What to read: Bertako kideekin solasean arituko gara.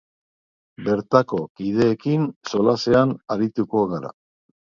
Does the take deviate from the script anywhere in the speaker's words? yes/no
no